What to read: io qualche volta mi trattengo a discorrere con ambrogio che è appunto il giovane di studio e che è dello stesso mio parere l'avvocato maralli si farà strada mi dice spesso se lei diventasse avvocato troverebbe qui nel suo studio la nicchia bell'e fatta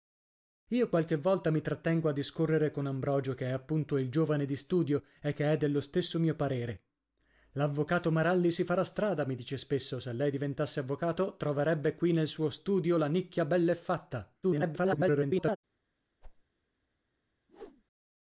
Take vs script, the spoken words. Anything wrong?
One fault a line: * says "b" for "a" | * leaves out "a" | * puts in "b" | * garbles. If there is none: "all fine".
* garbles